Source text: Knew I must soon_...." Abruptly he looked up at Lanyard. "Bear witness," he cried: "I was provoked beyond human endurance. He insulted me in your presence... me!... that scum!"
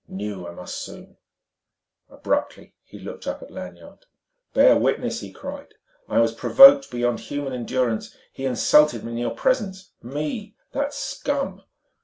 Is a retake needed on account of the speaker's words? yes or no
no